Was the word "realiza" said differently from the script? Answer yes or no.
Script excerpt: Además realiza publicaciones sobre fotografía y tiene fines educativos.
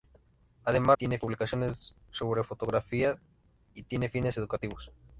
yes